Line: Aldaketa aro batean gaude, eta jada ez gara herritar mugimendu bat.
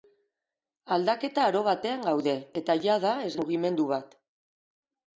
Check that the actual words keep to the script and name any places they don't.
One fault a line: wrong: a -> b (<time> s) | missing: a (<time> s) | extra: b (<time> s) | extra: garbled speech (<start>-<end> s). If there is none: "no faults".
missing: gara herritar (3.3 s)